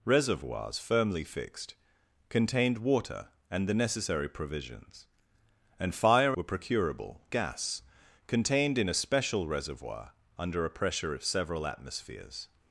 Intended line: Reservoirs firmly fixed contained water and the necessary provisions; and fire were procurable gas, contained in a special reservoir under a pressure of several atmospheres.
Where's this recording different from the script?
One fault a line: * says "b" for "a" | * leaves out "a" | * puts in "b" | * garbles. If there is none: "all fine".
all fine